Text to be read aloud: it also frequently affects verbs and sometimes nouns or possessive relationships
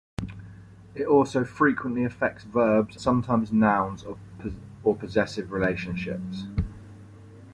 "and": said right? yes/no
no